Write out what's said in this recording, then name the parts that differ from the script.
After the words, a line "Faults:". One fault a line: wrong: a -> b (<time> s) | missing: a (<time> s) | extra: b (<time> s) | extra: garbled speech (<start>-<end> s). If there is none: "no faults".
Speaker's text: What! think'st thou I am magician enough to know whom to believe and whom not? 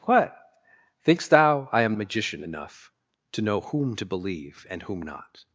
What! think'st thou I am magician enough to know whom to believe and whom not?
Faults:
no faults